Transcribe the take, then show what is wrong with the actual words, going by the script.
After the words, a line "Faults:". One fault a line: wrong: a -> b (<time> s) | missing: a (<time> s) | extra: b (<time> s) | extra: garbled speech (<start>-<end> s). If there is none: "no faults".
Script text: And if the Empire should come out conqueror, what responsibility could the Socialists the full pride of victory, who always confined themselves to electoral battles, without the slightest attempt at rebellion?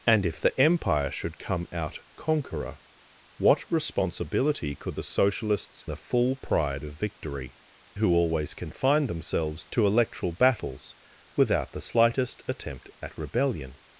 And if the Empire should come out conqueror, what responsibility could the Socialists the full pride of victory, who always confined themselves to electoral battles, without the slightest attempt at rebellion?
Faults:
no faults